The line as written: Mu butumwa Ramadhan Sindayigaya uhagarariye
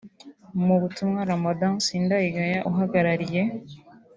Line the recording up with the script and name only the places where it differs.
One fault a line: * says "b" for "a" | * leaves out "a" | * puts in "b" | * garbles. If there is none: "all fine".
all fine